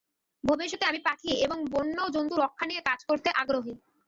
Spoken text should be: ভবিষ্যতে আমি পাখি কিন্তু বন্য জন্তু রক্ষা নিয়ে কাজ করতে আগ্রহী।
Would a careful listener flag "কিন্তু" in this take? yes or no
yes